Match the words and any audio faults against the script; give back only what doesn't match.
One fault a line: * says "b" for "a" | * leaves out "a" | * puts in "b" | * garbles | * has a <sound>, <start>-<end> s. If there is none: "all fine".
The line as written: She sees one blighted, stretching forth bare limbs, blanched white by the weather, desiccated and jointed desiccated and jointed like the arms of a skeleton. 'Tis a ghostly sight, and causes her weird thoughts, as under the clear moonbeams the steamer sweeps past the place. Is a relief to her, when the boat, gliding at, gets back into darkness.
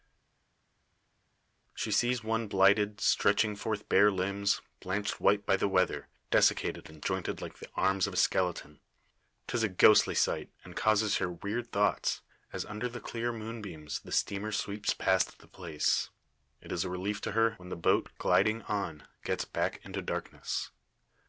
* leaves out "desiccated and jointed"
* puts in "It"
* says "on" for "at"